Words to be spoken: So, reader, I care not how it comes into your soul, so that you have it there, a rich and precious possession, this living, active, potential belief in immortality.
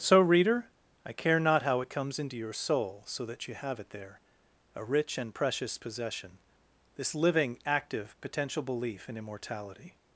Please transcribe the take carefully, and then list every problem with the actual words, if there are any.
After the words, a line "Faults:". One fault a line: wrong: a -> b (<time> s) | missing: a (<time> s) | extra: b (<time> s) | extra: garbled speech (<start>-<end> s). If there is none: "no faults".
So, reader, I care not how it comes into your soul, so that you have it there, a rich and precious possession, this living, active, potential belief in immortality.
Faults:
no faults